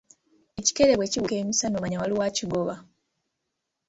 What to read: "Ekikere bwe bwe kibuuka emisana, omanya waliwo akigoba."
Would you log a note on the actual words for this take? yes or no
yes